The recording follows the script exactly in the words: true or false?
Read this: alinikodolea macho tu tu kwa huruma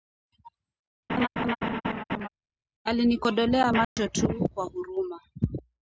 false